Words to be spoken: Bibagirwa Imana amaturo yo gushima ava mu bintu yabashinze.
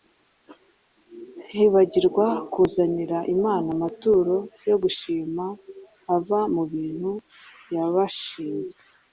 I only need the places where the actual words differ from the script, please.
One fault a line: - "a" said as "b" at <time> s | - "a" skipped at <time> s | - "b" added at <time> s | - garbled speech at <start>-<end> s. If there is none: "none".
- "kuzanira" added at 2.5 s